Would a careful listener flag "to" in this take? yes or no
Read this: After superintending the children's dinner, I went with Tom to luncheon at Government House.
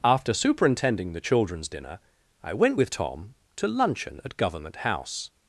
no